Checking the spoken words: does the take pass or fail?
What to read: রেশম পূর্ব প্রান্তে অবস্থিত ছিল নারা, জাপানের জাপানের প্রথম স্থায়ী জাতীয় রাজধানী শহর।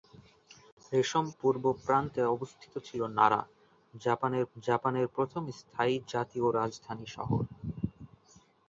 pass